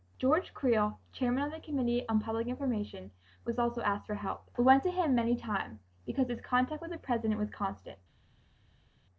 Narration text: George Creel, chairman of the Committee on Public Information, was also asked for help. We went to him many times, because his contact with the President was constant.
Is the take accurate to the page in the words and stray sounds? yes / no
yes